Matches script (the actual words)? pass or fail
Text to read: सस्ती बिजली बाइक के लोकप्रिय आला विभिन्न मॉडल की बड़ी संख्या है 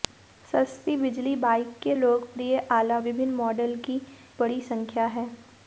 pass